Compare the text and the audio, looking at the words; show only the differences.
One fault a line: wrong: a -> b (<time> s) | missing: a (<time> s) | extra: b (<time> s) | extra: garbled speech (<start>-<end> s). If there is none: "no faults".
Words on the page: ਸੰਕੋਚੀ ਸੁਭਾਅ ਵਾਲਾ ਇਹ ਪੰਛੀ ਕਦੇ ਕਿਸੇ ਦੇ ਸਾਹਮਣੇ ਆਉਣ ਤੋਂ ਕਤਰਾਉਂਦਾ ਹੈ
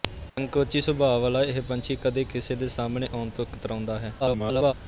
extra: garbled speech (4.2-4.7 s)